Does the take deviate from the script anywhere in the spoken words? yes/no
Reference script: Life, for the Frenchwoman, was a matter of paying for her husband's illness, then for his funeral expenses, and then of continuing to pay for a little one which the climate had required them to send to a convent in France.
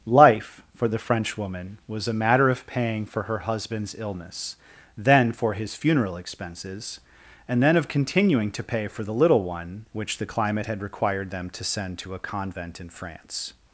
yes